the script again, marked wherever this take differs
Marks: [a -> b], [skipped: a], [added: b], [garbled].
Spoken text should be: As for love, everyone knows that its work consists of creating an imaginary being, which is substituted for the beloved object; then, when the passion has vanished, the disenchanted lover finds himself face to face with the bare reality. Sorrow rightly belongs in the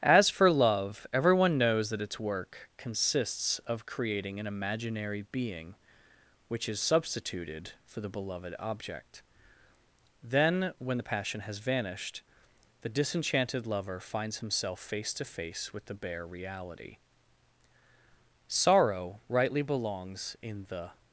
As for love, everyone knows that its work consists of creating an imaginary being, which is substituted for the beloved object; then, when the passion has vanished, the disenchanted lover finds himself face to face with the bare reality. Sorrow rightly belongs in the